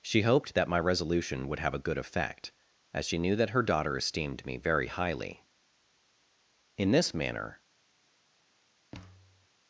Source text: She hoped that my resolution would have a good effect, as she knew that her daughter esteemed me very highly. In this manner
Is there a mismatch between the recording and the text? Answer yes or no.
no